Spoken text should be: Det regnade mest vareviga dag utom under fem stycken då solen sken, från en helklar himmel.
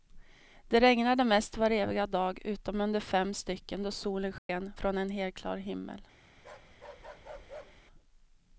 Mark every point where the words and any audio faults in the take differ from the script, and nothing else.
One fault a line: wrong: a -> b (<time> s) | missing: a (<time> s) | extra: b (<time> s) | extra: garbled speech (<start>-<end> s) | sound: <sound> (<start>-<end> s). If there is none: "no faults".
sound: dropout (4.4-4.5 s)
sound: bark (6.4-7.9 s)